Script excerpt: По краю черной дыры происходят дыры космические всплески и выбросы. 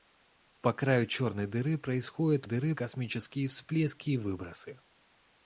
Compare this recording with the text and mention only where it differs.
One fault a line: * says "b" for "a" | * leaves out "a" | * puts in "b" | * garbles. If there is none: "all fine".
all fine